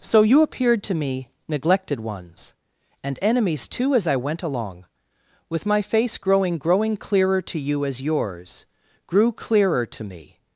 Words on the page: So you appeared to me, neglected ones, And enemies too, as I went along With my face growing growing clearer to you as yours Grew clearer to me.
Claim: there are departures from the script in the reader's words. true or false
false